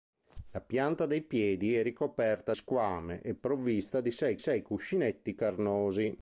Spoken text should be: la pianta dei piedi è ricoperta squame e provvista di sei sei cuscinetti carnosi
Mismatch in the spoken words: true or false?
false